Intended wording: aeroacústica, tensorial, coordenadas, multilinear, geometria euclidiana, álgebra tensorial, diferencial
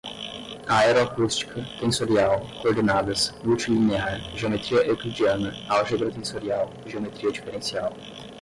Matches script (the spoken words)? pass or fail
fail